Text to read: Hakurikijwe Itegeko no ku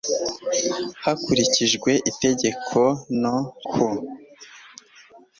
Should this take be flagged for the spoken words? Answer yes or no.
no